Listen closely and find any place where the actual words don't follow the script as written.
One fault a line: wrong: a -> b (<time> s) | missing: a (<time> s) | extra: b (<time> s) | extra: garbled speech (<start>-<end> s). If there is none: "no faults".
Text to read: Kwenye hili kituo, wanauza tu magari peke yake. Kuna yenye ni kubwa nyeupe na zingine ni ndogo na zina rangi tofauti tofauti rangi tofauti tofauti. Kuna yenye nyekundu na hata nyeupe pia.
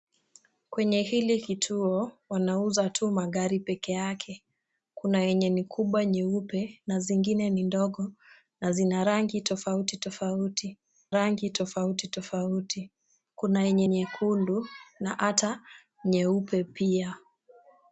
no faults